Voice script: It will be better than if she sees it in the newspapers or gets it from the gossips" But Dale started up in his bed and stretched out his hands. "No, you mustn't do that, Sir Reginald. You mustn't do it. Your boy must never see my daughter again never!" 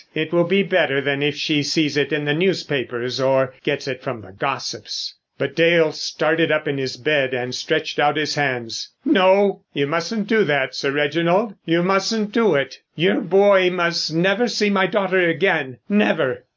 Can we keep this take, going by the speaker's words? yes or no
yes